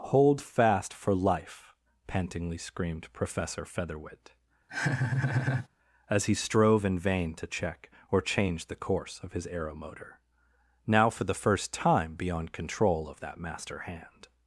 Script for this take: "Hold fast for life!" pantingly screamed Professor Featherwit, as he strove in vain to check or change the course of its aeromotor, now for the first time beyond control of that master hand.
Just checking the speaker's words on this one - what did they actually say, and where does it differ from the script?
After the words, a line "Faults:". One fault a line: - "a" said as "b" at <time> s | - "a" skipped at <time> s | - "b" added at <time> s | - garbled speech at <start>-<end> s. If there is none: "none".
"Hold fast for life!" pantingly screamed Professor Featherwit, as he strove in vain to check or change the course of his aeromotor, now for the first time beyond control of that master hand.
Faults:
- "its" said as "his" at 9.3 s